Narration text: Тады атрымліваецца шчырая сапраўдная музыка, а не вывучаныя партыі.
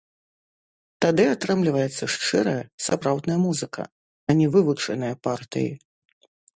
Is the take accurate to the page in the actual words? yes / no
yes